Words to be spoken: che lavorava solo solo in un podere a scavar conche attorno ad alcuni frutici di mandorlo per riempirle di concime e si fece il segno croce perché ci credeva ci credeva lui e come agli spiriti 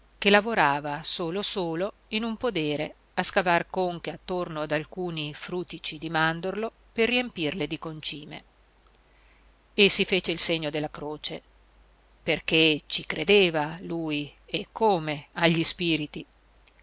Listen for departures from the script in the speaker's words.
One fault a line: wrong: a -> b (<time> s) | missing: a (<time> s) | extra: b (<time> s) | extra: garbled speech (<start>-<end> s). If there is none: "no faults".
extra: della (10.7 s)
missing: ci credeva (13.8 s)